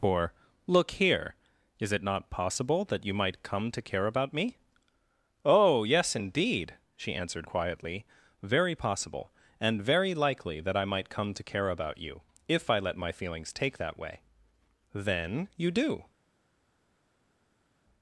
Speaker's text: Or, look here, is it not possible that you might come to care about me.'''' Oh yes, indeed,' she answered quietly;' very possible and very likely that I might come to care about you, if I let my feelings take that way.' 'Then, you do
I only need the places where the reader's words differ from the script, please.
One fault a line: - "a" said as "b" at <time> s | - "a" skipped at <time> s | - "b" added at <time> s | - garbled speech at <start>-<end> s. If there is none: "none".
none